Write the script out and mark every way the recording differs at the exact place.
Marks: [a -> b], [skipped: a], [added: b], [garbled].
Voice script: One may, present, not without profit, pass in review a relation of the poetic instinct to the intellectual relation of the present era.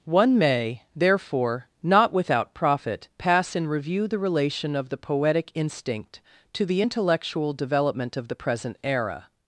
One may, [present, -> therefore] not without profit, pass in review [a -> the] relation of the poetic instinct to the intellectual [relation -> development] of the present era.